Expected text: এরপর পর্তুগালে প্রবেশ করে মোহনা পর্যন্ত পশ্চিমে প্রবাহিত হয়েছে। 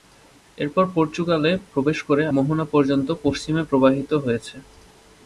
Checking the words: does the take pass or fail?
pass